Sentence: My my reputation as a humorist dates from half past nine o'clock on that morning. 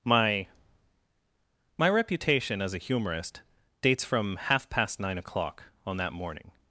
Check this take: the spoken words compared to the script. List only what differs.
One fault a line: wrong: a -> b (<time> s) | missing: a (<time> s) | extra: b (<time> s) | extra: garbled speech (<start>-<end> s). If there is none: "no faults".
no faults